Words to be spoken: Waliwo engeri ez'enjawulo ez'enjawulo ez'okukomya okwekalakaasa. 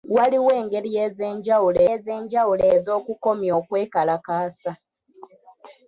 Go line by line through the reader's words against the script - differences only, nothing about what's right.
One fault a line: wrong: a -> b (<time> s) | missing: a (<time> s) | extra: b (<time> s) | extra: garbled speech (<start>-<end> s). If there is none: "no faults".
no faults